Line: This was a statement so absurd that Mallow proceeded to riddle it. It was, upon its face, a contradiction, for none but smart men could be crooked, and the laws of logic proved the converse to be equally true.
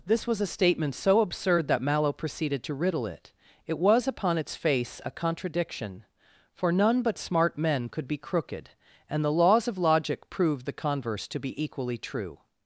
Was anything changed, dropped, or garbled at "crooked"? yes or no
no